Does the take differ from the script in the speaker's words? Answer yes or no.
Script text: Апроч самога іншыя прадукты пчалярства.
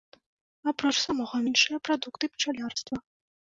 no